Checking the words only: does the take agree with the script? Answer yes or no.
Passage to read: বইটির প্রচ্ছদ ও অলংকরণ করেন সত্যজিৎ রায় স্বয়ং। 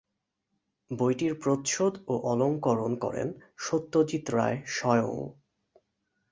yes